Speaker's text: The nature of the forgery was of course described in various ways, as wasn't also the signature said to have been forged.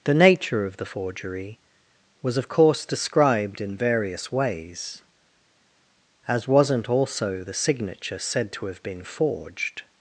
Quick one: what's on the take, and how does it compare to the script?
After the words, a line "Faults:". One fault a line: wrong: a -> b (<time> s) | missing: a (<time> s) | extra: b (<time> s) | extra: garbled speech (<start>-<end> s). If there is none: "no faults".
The nature of the forgery was of course described in various ways, as wasn't also the signature said to have been forged.
Faults:
no faults